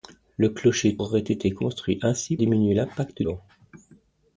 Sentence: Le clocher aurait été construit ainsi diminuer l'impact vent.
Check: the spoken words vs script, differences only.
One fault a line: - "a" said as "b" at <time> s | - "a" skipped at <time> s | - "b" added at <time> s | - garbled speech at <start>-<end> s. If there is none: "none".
none